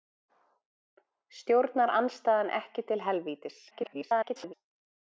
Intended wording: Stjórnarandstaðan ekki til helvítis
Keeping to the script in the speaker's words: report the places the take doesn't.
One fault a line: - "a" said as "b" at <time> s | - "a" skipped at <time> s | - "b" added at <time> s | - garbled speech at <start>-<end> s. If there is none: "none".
- garbled speech at 3.7-4.5 s